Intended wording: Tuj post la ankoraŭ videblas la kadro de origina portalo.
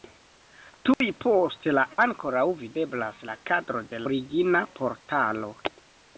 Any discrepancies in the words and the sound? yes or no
yes